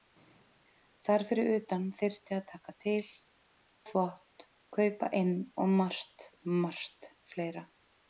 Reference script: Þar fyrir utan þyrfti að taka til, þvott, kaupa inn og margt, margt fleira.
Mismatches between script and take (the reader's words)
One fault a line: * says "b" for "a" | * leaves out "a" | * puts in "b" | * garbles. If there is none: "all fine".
all fine